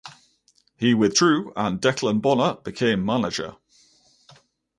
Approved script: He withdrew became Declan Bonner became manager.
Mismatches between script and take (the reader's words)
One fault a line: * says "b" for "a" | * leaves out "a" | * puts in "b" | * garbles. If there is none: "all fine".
* says "and" for "became"